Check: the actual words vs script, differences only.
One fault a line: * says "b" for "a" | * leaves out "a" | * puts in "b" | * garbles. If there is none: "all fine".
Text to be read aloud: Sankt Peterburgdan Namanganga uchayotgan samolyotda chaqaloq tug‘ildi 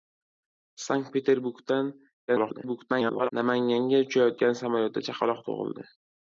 * garbles